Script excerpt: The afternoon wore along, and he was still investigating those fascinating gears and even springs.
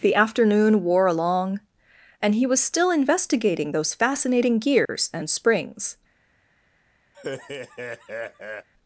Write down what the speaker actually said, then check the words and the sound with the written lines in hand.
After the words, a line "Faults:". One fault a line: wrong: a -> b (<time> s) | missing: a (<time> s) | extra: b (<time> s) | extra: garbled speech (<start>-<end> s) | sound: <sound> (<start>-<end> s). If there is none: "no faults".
The afternoon wore along, and he was still investigating those fascinating gears and springs.
Faults:
sound: dropout (4.9-4.9 s)
missing: even (5.3 s)
sound: laugh (7.1-8.7 s)